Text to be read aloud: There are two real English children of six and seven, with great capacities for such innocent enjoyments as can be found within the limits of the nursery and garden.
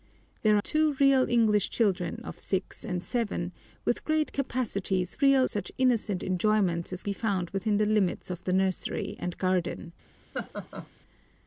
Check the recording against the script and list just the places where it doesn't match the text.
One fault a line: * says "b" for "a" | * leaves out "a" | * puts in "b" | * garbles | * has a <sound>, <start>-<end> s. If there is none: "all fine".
* leaves out "are"
* says "real" for "for"
* leaves out "can"
* has a laugh, 10.3-10.9 s